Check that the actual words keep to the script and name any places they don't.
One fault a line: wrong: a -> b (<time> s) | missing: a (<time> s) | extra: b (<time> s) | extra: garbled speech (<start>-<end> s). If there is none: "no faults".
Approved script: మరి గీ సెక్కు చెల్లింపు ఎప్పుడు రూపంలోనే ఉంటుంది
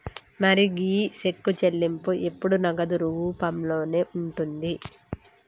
extra: నగదు (2.7 s)